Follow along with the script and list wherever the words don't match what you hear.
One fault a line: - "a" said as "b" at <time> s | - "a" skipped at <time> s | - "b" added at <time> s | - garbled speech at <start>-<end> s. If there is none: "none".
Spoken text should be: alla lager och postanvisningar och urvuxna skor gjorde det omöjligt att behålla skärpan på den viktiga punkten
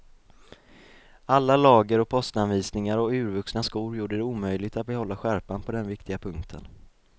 none